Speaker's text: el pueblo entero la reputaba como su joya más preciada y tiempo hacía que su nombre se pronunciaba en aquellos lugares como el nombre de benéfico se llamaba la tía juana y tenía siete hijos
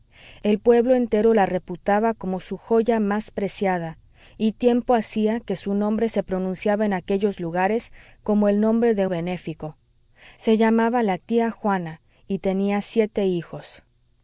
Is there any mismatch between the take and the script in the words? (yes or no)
no